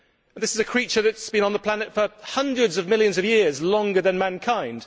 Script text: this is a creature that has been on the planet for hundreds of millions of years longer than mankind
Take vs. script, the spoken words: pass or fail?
pass